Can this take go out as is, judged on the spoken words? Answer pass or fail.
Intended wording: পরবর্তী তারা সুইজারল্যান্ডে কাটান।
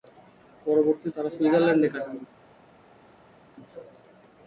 pass